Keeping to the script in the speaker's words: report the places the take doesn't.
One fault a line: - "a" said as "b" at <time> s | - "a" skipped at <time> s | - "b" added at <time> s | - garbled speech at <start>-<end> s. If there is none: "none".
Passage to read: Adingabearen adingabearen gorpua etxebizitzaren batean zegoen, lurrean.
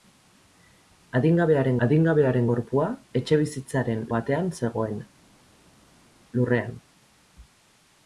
none